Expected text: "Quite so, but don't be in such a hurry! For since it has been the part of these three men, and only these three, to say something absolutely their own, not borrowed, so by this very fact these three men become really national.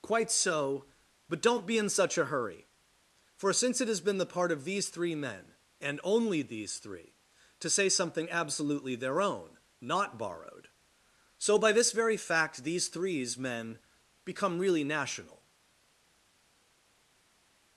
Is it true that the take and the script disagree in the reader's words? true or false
true